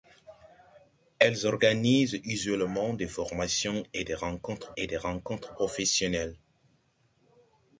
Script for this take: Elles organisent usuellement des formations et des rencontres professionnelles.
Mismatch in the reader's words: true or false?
true